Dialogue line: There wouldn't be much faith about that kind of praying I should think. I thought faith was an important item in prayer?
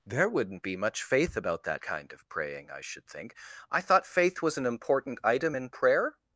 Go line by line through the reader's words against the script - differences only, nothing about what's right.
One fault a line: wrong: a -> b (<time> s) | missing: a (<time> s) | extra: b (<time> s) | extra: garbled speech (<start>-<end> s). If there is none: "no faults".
no faults